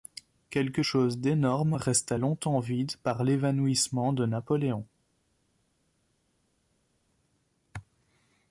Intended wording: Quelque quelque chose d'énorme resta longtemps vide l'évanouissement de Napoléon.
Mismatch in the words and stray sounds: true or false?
true